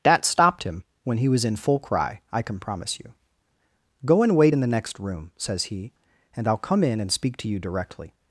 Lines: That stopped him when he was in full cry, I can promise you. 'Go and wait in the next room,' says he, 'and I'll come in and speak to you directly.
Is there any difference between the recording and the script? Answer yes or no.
no